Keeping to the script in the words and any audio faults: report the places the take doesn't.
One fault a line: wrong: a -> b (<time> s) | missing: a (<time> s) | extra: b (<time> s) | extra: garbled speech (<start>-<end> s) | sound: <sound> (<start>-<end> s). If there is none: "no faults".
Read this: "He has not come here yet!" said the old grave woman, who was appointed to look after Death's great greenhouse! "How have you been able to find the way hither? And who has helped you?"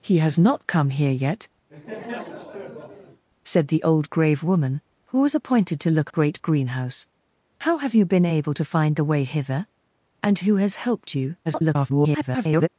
sound: laugh (1.7-3.2 s)
missing: after Death's (6.1 s)
extra: garbled speech (11.5-12.7 s)